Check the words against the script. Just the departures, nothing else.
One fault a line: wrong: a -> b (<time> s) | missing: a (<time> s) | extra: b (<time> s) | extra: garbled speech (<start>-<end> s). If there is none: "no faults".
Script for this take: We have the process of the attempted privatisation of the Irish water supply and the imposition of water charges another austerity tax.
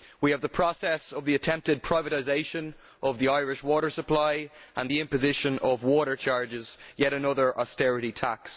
extra: yet (7.0 s)